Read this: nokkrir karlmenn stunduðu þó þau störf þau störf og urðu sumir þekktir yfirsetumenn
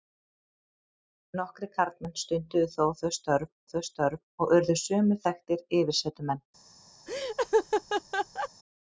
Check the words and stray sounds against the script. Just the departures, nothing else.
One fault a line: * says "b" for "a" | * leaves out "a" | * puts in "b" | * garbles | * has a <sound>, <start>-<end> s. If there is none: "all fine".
* has a laugh, 7.1-8.5 s